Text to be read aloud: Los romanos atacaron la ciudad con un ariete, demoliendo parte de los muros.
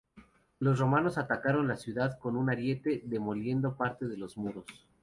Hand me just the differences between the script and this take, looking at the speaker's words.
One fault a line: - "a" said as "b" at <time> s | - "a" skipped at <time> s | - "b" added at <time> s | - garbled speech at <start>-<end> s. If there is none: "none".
none